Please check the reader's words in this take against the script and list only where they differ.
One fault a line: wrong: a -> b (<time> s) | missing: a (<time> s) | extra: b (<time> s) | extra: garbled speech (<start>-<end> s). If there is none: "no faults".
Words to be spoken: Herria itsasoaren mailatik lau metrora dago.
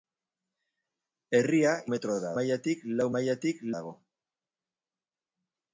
wrong: itsasoaren -> metrora (1.9 s)
wrong: metrora -> mailatik (3.2 s)